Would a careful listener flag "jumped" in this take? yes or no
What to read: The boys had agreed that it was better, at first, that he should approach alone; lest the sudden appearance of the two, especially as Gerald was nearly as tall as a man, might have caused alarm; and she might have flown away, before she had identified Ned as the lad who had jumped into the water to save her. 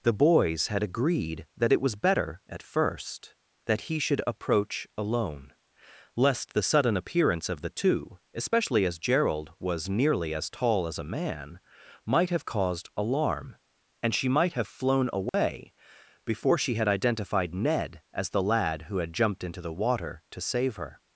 no